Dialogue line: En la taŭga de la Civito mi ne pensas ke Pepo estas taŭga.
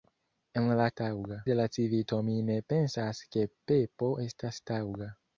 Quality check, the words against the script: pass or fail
pass